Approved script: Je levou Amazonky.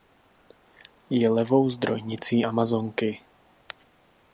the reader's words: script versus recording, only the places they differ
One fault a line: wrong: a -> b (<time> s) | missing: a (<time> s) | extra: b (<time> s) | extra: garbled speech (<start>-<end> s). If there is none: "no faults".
extra: zdrojnicí (1.7 s)